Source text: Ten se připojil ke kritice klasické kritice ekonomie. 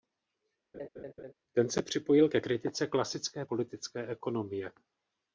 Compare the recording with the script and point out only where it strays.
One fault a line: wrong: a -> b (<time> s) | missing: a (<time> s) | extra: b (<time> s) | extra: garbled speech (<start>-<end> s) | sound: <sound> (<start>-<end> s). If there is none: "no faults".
sound: laugh (0.7-1.3 s)
wrong: kritice -> politické (3.4 s)